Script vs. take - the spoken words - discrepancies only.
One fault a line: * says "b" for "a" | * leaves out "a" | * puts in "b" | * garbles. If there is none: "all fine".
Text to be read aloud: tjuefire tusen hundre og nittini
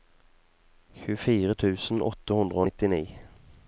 * puts in "åtte"